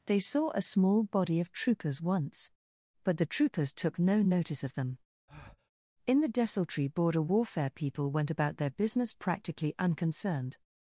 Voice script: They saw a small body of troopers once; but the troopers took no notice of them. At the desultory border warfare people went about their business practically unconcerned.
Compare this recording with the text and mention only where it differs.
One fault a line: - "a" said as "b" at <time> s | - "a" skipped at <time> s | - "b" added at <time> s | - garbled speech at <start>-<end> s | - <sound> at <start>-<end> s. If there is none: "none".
- breath at 5.3-5.7 s
- "At" said as "In" at 6.1 s